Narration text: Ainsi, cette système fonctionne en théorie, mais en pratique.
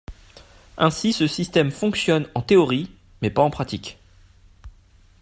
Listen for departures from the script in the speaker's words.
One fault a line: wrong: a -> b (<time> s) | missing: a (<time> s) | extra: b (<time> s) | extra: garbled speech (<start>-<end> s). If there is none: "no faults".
wrong: cette -> ce (1.1 s)
extra: pas (3.3 s)